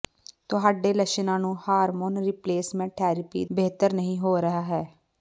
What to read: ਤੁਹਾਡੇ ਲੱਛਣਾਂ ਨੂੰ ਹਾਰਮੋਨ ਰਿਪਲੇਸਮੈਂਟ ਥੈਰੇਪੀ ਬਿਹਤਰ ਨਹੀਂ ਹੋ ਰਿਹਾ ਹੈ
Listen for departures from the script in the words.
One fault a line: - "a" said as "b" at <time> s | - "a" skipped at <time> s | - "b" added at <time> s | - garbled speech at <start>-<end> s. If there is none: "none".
none